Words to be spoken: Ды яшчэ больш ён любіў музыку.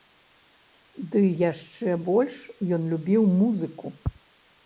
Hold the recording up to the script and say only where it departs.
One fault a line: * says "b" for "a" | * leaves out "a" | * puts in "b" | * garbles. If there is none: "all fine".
all fine